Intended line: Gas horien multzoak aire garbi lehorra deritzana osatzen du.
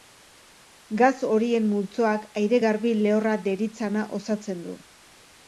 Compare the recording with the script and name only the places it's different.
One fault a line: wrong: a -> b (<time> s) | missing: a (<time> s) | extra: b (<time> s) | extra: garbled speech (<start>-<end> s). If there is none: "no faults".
no faults